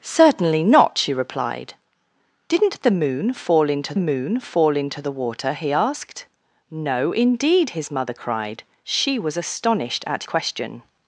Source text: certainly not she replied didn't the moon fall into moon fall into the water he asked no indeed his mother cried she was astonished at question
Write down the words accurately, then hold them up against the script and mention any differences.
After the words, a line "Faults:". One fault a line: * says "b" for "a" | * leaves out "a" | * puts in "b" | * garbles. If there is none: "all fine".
certainly not she replied didn't the moon fall into moon fall into the water he asked no indeed his mother cried she was astonished at question
Faults:
all fine